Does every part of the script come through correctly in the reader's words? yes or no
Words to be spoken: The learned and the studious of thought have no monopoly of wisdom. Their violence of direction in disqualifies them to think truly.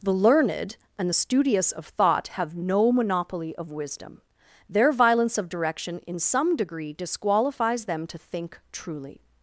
no